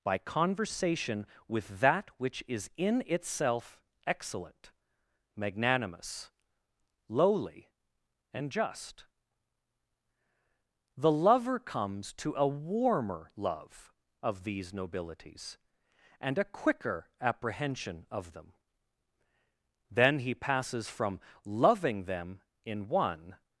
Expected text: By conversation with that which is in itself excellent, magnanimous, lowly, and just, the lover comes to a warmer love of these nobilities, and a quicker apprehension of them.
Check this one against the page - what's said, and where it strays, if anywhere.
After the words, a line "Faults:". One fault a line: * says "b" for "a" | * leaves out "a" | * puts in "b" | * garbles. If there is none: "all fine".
By conversation with that which is in itself excellent, magnanimous, lowly, and just, the lover comes to a warmer love of these nobilities, and a quicker apprehension of them. Then he passes from loving them in one
Faults:
* puts in "Then he passes from loving them in one"